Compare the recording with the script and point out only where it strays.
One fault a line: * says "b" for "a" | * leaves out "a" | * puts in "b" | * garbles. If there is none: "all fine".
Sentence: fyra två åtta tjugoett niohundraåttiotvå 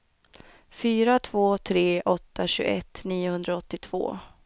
* puts in "tre"